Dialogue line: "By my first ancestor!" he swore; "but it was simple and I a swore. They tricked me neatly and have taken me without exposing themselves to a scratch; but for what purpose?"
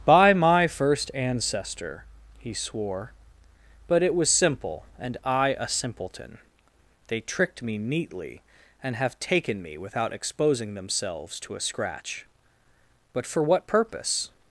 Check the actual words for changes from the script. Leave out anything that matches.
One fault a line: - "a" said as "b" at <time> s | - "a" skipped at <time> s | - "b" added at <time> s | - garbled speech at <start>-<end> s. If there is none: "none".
- "swore" said as "simpleton" at 5.7 s